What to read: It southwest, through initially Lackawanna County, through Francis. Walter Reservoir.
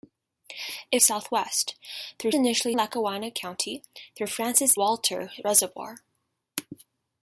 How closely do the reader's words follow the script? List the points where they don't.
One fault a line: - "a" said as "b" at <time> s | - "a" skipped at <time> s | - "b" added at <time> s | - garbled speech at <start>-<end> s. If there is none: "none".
none